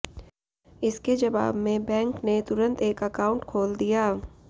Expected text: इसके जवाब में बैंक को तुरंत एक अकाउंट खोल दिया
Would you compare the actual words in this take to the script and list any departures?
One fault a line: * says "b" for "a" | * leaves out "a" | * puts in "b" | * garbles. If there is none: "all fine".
* says "ने" for "को"